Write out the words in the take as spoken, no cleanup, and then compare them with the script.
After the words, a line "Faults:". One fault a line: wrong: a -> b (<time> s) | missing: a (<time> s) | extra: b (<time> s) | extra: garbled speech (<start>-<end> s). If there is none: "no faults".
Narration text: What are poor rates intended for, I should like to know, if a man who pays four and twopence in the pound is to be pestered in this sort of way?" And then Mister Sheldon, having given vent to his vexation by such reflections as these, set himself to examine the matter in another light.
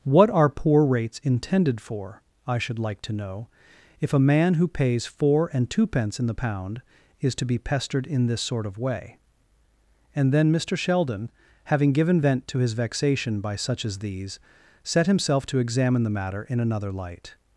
What are poor rates intended for, I should like to know, if a man who pays four and twopence in the pound is to be pestered in this sort of way?" And then Mister Sheldon, having given vent to his vexation by such as these, set himself to examine the matter in another light.
Faults:
missing: reflections (13.9 s)